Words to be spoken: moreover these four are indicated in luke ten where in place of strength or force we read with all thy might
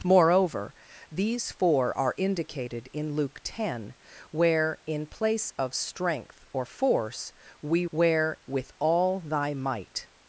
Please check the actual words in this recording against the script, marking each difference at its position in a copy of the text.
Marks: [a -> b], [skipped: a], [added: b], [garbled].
moreover these four are indicated in luke ten where in place of strength or force we [read -> where] with all thy might